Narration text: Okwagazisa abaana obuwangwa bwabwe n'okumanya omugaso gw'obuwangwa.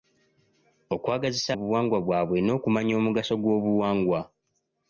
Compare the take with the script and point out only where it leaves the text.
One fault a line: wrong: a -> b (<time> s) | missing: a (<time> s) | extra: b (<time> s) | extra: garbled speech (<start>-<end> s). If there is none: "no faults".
missing: abaana (1.5 s)